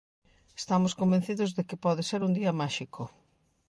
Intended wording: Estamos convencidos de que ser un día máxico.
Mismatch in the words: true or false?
true